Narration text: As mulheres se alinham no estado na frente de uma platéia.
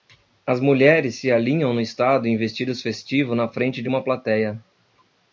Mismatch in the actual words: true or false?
true